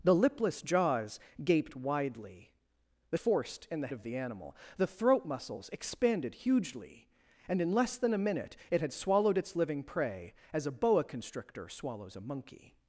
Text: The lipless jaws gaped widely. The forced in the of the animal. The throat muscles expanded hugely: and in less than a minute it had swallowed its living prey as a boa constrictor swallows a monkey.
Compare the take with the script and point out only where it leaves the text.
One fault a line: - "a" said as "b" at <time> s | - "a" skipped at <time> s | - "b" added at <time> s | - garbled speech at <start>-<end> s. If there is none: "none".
none